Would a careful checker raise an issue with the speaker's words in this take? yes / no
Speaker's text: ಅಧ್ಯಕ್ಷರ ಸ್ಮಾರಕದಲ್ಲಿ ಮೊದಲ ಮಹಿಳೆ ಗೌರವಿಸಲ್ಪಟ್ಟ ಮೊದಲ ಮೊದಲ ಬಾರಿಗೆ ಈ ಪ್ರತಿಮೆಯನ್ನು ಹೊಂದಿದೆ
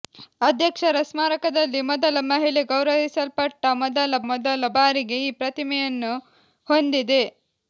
no